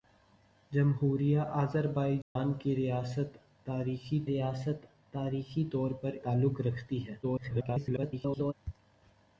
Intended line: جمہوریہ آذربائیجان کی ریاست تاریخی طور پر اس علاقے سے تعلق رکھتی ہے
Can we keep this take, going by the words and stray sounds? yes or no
no